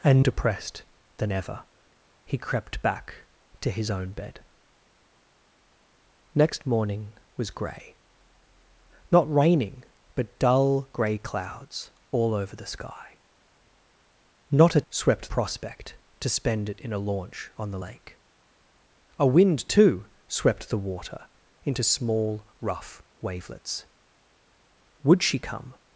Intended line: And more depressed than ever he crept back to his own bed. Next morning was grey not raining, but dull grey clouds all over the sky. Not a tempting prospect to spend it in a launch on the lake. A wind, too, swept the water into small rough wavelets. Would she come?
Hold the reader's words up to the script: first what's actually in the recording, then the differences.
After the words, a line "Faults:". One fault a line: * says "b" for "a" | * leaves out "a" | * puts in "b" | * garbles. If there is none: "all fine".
And depressed than ever he crept back to his own bed. Next morning was grey not raining, but dull grey clouds all over the sky. Not a swept prospect to spend it in a launch on the lake. A wind, too, swept the water into small rough wavelets. Would she come?
Faults:
* leaves out "more"
* says "swept" for "tempting"